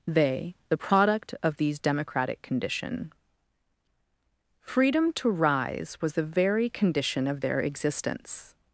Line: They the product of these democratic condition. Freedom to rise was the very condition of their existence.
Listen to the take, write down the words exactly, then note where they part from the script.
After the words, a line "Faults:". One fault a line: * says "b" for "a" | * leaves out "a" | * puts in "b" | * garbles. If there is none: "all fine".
They the product of these democratic condition. Freedom to rise was the very condition of their existence.
Faults:
all fine